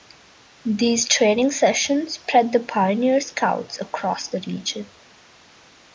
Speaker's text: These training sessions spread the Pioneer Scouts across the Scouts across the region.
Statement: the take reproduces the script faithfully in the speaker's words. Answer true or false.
false